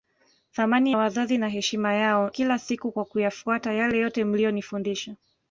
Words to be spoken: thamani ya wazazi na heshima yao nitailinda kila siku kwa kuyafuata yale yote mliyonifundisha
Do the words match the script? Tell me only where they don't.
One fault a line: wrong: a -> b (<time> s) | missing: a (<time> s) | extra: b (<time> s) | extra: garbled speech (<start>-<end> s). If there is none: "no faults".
missing: ya (0.9 s)
missing: nitailinda (2.3 s)